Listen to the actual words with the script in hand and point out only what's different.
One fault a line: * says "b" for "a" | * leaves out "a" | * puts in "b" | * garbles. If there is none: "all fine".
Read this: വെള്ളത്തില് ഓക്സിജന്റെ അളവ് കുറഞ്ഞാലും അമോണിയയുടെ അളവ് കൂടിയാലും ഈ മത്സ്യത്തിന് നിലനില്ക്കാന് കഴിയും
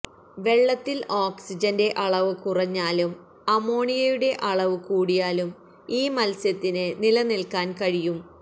all fine